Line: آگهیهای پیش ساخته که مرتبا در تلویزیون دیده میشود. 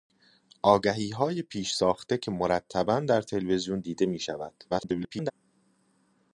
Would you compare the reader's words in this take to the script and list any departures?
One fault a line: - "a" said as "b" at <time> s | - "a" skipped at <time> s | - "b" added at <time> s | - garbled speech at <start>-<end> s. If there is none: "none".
- garbled speech at 4.7-5.3 s